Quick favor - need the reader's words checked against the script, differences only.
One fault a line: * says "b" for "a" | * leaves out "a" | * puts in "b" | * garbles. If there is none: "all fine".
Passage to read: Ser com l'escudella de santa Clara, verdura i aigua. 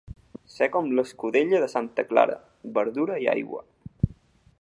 all fine